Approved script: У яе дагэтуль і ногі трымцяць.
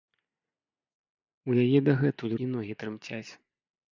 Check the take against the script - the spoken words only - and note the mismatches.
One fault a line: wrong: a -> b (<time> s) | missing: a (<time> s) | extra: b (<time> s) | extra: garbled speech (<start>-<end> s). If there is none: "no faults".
no faults